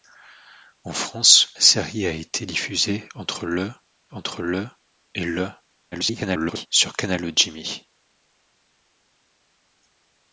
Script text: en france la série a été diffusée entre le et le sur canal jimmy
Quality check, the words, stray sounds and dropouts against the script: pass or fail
fail